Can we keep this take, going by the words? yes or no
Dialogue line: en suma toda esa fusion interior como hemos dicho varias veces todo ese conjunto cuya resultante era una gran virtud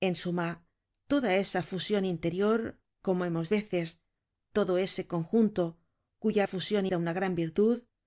no